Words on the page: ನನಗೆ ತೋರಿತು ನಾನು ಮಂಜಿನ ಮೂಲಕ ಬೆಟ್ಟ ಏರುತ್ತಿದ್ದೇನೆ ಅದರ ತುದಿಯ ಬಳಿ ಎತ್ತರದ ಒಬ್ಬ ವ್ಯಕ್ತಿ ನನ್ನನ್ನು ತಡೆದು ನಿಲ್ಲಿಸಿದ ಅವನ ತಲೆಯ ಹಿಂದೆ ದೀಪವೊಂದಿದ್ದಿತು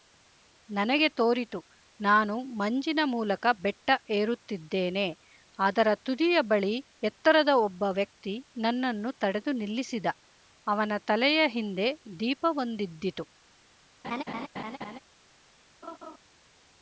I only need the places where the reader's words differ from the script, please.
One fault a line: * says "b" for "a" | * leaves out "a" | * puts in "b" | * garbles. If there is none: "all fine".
all fine